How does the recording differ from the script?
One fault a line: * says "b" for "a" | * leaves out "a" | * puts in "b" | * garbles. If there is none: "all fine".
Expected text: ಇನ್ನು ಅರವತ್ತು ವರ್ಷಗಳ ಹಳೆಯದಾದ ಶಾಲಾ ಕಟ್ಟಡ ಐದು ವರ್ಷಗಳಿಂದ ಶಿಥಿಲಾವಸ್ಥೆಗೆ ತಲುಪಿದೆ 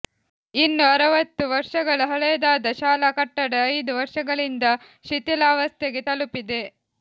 all fine